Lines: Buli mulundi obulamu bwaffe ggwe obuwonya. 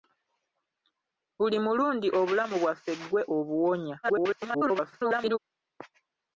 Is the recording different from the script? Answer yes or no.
yes